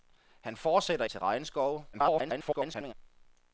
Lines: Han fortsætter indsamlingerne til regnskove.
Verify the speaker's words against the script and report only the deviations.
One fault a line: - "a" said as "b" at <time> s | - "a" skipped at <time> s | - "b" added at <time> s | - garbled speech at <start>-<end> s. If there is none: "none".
- "indsamlingerne" skipped at 1.1 s
- garbled speech at 1.9-2.9 s